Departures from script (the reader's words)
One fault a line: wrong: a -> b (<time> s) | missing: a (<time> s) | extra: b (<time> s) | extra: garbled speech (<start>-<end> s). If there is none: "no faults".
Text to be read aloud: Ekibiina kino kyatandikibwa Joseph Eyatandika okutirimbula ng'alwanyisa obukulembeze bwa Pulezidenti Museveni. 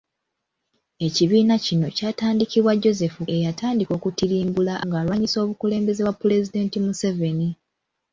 no faults